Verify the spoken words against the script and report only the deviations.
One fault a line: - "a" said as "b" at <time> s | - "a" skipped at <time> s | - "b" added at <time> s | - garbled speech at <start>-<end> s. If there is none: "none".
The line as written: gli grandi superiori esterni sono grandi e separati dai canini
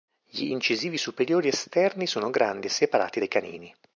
- "grandi" said as "incisivi" at 0.5 s